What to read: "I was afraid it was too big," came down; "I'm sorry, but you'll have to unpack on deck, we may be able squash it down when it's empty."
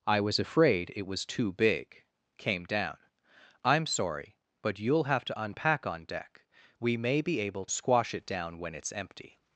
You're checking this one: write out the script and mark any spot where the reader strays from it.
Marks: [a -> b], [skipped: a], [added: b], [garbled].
"I was afraid it was too big," came down; "I'm sorry, but you'll have to unpack on deck, we may be able squash it down when it's empty."